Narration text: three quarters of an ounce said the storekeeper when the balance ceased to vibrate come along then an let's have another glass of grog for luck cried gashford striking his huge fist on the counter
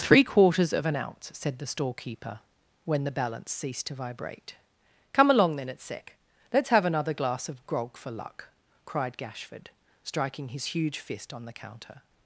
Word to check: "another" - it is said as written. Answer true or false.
true